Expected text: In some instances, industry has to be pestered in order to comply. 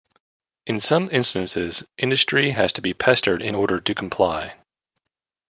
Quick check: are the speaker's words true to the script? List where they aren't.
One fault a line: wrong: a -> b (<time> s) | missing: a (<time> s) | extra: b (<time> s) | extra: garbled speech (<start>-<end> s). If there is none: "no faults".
no faults